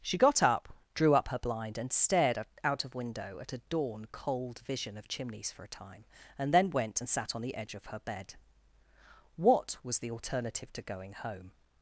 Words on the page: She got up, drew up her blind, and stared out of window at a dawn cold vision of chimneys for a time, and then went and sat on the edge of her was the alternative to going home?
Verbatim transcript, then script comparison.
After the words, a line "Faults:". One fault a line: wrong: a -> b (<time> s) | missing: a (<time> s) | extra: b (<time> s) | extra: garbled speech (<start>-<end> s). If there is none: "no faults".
She got up, drew up her blind, and stared out of window at a dawn cold vision of chimneys for a time, and then went and sat on the edge of her bed. What was the alternative to going home?
Faults:
extra: bed What (8.0 s)